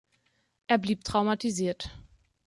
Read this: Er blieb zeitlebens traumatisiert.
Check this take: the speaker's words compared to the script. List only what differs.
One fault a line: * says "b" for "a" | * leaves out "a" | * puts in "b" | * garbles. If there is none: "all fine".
* leaves out "zeitlebens"